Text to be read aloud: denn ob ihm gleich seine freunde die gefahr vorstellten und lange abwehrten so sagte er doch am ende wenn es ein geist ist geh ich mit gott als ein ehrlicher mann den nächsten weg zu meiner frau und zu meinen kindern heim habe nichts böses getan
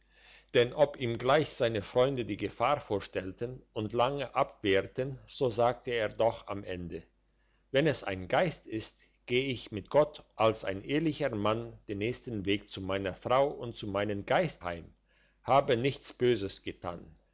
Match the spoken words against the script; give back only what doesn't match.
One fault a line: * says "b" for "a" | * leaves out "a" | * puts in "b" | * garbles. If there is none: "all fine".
* says "geist" for "kindern"